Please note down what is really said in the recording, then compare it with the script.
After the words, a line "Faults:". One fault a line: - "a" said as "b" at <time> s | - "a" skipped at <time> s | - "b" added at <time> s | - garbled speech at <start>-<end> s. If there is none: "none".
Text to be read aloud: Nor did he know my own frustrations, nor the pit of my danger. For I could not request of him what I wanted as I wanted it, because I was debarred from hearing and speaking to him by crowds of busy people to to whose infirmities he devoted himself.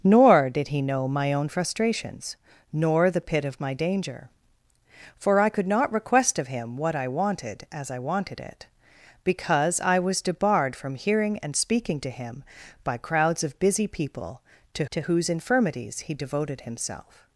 Nor did he know my own frustrations, nor the pit of my danger. For I could not request of him what I wanted as I wanted it, because I was debarred from hearing and speaking to him by crowds of busy people to to whose infirmities he devoted himself.
Faults:
none